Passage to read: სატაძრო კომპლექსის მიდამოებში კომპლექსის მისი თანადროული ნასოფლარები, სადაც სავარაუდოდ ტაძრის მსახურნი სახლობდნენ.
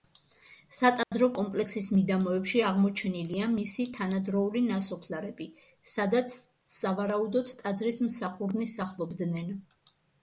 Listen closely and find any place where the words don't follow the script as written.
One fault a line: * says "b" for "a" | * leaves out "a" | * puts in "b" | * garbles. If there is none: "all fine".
* says "აღმოჩენილია" for "კომპლექსის"